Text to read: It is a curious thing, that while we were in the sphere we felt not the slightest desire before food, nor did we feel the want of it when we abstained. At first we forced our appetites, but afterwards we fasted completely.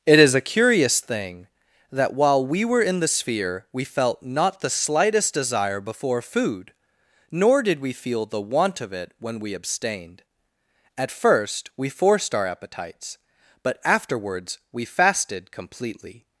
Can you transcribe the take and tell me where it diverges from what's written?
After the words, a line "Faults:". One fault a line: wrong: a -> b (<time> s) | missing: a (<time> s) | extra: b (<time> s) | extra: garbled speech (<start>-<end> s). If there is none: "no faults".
It is a curious thing, that while we were in the sphere we felt not the slightest desire before food, nor did we feel the want of it when we abstained. At first we forced our appetites, but afterwards we fasted completely.
Faults:
no faults